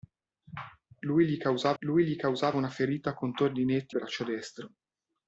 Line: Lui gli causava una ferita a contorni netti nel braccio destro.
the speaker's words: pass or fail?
fail